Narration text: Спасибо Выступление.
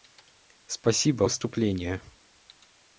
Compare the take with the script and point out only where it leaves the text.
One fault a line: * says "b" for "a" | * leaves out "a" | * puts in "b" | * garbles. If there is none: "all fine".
all fine